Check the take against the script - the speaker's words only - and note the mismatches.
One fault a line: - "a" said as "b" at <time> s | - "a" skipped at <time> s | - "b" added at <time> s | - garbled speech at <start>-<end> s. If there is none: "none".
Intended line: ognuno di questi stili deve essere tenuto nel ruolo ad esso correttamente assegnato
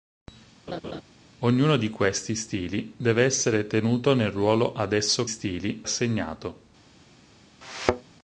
- "correttamente" said as "stili" at 5.3 s